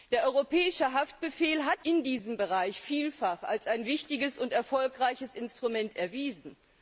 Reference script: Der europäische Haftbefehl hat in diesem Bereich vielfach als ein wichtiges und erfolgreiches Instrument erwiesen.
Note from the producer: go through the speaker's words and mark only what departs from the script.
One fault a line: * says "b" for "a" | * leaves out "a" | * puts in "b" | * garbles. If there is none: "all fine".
all fine